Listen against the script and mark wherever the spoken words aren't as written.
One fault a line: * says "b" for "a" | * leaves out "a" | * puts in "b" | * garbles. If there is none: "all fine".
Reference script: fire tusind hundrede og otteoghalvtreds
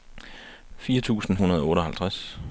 all fine